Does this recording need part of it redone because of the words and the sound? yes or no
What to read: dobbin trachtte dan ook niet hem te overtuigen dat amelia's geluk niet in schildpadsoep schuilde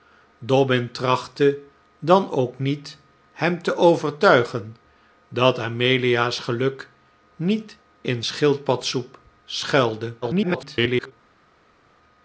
yes